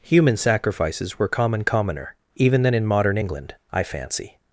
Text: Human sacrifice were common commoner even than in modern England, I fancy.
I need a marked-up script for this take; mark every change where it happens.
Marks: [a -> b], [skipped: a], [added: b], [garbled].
Human [sacrifice -> sacrifices] were common commoner even than in modern England, I fancy.